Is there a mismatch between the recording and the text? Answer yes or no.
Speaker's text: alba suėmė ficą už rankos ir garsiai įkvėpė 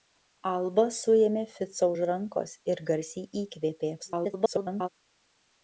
yes